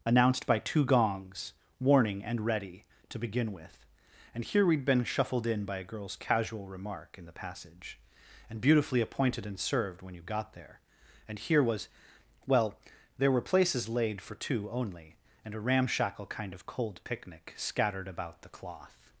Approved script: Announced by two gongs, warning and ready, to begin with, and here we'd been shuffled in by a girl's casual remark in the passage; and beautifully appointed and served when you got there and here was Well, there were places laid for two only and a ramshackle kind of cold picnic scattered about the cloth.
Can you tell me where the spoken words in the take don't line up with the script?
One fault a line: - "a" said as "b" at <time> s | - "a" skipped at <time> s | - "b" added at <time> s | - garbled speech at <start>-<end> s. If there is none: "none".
none